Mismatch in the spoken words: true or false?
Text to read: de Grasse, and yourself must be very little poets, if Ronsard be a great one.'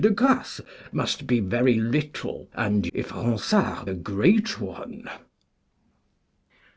true